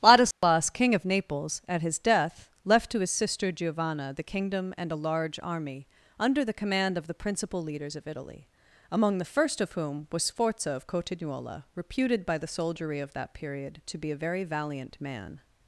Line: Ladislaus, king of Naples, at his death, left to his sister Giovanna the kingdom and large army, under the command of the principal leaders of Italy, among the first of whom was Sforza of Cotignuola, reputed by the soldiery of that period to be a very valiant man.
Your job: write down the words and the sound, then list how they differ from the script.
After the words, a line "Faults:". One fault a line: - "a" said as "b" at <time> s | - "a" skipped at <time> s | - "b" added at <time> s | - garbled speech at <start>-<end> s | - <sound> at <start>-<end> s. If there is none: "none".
Ladislaus, king of Naples, at his death, left to his sister Giovanna the kingdom and a large army, under the command of the principal leaders of Italy, among the first of whom was Sforza of Cotignuola, reputed by the soldiery of that period to be a very valiant man.
Faults:
- dropout at 0.3-0.4 s
- "a" added at 4.9 s